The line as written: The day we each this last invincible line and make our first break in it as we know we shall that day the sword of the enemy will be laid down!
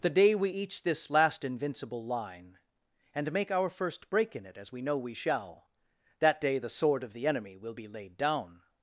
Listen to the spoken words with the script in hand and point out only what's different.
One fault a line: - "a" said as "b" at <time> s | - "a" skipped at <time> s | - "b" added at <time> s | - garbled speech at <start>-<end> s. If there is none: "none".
none